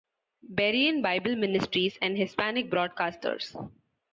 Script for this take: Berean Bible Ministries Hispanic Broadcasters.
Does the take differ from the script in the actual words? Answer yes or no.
yes